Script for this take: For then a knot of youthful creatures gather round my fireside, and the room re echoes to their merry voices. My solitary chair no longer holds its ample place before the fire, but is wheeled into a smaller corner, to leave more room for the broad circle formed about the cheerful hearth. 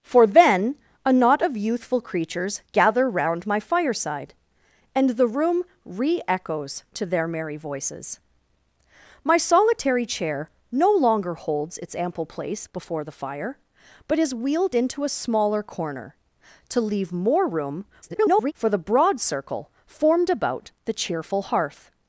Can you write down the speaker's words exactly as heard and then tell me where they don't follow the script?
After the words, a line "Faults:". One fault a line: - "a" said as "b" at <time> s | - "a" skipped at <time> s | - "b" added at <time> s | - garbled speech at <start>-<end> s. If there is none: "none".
For then a knot of youthful creatures gather round my fireside, and the room re echoes to their merry voices. My solitary chair no longer holds its ample place before the fire, but is wheeled into a smaller corner, to leave more room [garbled] for the broad circle formed about the cheerful hearth.
Faults:
- garbled speech at 18.0-18.5 s